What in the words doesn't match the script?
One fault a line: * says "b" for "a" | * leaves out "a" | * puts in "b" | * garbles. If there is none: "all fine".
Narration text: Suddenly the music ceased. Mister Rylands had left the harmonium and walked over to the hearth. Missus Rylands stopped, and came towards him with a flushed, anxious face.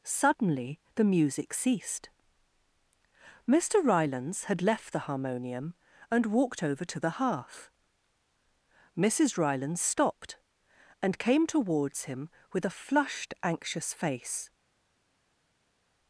all fine